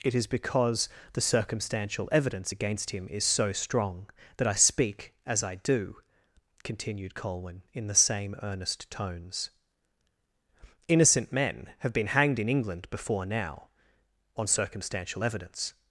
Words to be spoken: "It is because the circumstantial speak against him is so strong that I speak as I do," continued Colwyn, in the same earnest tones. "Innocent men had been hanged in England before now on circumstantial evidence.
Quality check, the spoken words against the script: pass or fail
fail